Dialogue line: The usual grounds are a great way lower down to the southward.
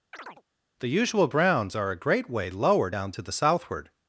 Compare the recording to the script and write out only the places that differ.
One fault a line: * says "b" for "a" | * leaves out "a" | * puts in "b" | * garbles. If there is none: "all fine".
* says "browns" for "grounds"